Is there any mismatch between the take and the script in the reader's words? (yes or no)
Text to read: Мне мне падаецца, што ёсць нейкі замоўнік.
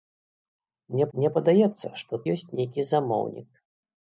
no